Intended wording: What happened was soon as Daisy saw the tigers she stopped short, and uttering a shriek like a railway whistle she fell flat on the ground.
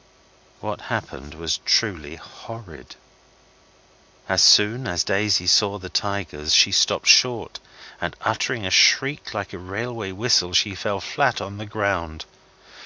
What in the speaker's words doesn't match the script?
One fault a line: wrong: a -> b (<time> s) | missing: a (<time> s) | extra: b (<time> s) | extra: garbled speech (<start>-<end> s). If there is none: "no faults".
extra: truly horrid As (1.6 s)